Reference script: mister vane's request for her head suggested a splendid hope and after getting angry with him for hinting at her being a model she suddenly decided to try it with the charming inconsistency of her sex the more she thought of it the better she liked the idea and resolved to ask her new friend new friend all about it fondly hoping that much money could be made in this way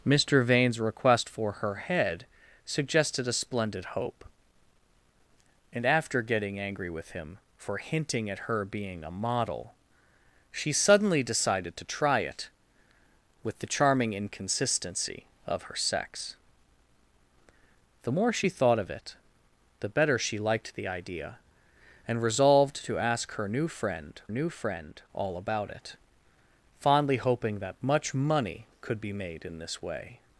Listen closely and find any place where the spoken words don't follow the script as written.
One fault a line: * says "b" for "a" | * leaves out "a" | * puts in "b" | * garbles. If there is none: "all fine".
all fine